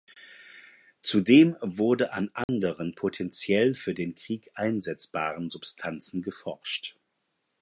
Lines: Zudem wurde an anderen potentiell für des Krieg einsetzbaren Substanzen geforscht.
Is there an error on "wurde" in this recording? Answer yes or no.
no